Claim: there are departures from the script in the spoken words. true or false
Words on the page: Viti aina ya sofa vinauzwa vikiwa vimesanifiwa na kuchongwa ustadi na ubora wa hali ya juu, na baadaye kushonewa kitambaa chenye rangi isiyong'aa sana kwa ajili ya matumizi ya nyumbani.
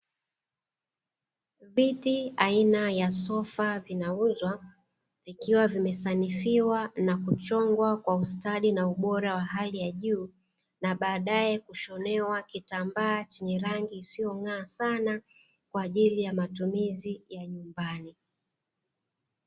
true